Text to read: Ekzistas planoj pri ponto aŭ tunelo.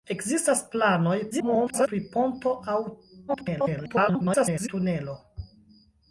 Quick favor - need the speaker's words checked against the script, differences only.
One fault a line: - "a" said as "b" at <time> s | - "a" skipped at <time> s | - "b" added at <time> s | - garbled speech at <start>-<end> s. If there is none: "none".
- garbled speech at 1.3-1.9 s
- garbled speech at 3.3-4.7 s